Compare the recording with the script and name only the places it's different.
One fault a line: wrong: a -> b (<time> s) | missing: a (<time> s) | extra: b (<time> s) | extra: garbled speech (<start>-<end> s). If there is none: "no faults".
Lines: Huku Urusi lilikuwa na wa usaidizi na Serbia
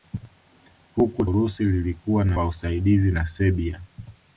no faults